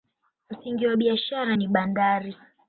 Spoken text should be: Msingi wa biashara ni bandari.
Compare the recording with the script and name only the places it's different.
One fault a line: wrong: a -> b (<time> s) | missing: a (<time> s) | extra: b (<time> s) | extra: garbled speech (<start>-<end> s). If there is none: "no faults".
no faults